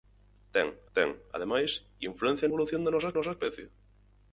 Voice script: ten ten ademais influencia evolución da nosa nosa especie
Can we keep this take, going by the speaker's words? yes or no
yes